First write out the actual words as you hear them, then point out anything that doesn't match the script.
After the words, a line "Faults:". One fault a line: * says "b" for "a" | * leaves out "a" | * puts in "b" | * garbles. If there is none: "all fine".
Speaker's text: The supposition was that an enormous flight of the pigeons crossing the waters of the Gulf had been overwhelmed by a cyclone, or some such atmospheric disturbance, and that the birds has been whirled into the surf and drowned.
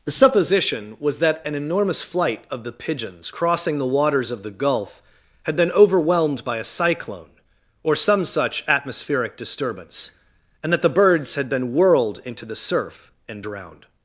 The supposition was that an enormous flight of the pigeons crossing the waters of the Gulf had been overwhelmed by a cyclone, or some such atmospheric disturbance, and that the birds had been whirled into the surf and drowned.
Faults:
* says "had" for "has"